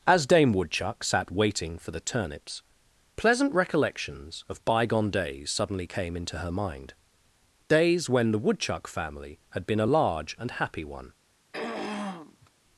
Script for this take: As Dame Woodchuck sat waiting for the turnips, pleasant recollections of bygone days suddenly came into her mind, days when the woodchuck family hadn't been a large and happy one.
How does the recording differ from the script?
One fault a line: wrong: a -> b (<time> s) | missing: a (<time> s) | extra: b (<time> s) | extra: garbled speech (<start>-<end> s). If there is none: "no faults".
wrong: hadn't -> had (9.5 s)